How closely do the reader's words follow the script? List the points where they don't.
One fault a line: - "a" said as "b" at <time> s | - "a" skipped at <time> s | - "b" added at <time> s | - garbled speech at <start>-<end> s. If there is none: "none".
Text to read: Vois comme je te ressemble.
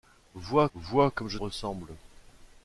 - "vois" added at 0.7 s
- "te" skipped at 1.4 s